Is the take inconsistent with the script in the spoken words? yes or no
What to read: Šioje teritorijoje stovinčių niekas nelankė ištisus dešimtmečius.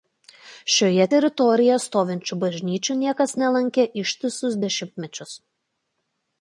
yes